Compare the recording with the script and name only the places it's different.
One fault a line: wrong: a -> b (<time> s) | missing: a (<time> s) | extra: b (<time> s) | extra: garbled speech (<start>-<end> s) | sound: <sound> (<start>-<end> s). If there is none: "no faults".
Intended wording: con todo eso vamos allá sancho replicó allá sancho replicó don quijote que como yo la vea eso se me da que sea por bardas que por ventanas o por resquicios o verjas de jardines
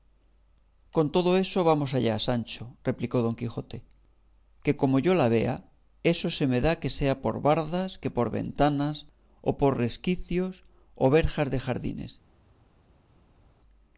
missing: allá sancho replicó (3.2 s)